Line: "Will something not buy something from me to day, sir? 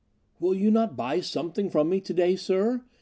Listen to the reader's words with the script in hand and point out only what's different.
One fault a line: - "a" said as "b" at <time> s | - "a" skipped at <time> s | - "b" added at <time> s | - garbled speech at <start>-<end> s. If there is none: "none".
- "something" said as "you" at 0.6 s